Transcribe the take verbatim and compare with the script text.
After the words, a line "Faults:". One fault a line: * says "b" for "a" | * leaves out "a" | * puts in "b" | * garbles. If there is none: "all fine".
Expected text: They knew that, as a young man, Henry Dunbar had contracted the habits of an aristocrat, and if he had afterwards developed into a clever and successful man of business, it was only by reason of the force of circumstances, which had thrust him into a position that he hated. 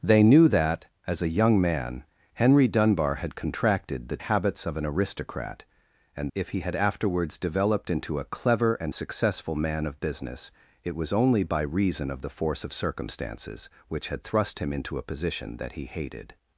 They knew that, as a young man, Henry Dunbar had contracted the habits of an aristocrat, and if he had afterwards developed into a clever and successful man of business, it was only by reason of the force of circumstances, which had thrust him into a position that he hated.
Faults:
all fine